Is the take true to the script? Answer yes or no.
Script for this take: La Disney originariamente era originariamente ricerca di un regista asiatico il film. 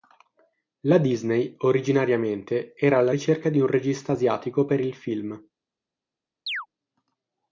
no